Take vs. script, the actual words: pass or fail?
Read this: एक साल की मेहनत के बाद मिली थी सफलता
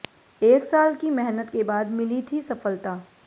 pass